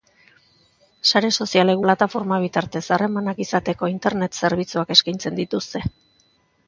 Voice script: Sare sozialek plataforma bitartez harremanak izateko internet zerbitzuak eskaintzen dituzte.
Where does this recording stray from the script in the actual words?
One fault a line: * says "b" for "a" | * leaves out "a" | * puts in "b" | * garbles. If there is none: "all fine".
all fine